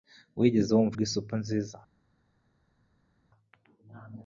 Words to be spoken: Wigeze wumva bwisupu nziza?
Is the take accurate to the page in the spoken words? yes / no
yes